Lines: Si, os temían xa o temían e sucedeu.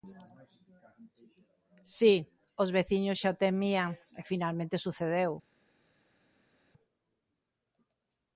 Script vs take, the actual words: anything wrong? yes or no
yes